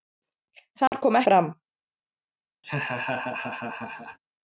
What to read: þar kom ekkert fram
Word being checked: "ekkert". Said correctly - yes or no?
no